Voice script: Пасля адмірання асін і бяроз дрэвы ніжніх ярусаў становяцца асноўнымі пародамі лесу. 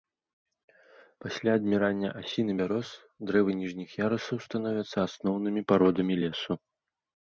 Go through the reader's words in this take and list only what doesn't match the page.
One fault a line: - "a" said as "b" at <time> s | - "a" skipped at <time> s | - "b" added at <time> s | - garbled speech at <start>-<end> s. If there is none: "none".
none